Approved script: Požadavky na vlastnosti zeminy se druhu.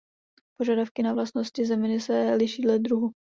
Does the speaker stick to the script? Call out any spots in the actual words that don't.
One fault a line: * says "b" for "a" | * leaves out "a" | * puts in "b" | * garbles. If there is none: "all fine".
* puts in "liší dle"